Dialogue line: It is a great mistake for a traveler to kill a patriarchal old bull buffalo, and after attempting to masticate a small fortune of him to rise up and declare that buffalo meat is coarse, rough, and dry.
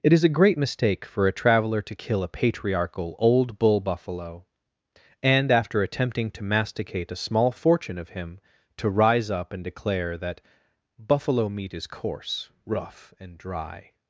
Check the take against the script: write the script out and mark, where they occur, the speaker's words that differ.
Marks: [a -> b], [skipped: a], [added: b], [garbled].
It is a great mistake for a traveler to kill a patriarchal old bull buffalo, and after attempting to masticate a small fortune of him to rise up and declare that buffalo meat is coarse, rough, and dry.